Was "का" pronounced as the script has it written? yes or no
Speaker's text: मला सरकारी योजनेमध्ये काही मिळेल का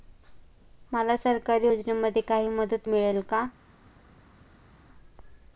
yes